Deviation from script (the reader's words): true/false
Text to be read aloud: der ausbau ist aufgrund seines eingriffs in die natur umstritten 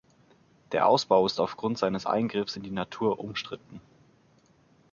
false